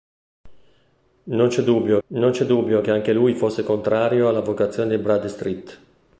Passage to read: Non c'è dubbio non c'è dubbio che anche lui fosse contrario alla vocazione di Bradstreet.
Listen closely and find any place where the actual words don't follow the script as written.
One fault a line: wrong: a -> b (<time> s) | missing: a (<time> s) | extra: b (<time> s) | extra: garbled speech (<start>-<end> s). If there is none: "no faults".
no faults